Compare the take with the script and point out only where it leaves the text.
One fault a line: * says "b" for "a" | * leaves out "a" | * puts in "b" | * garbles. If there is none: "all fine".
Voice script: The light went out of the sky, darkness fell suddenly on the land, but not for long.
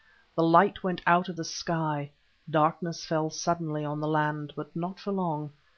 all fine